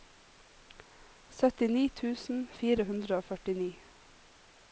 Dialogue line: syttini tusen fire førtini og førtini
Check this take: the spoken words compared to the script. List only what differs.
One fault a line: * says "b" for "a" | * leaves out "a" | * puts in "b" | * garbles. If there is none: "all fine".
* says "hundre" for "førtini"